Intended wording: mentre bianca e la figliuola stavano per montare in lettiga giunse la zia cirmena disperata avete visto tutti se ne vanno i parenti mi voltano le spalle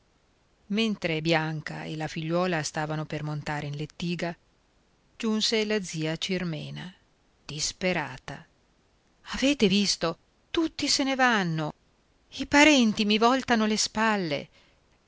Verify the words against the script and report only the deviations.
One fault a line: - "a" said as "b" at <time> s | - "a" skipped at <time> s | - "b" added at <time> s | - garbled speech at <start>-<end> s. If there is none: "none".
none